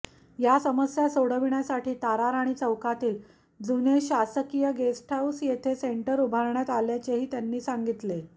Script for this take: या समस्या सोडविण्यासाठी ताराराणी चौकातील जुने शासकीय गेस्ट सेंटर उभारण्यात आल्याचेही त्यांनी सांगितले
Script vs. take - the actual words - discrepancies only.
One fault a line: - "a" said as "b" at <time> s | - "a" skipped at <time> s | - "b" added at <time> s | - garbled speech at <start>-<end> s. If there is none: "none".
- "हाऊस येथे" added at 5.1 s